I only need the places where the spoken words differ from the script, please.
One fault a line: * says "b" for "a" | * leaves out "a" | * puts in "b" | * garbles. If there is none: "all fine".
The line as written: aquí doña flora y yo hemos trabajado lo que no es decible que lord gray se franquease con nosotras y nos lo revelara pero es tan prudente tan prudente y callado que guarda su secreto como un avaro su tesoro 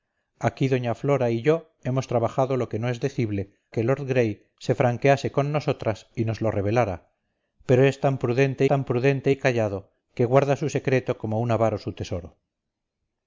all fine